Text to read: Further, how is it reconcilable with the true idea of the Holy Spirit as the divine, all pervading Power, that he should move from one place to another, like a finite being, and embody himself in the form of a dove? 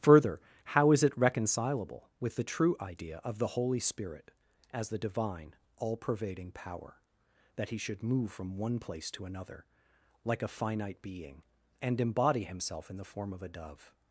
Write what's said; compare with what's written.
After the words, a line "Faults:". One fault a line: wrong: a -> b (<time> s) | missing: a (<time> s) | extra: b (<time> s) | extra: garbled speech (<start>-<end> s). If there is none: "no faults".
Further, how is it reconcilable with the true idea of the Holy Spirit as the divine, all pervading Power, that he should move from one place to another, like a finite being, and embody himself in the form of a dove?
Faults:
no faults